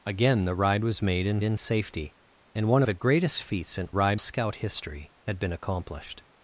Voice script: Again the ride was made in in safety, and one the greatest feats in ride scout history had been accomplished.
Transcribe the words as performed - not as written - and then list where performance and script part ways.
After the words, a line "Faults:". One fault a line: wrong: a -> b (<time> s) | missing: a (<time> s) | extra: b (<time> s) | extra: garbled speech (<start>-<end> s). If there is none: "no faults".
Again the ride was made in in safety, and one the greatest feats in ride scout history had been accomplished.
Faults:
no faults